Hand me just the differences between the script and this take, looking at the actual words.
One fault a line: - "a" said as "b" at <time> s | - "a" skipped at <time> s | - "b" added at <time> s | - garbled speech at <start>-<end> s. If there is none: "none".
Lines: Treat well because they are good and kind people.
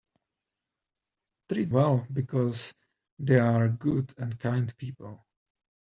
none